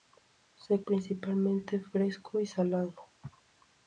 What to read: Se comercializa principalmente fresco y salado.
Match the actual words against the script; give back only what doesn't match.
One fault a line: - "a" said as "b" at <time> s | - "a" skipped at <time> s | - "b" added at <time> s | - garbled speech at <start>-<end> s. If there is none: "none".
- "comercializa" skipped at 0.8 s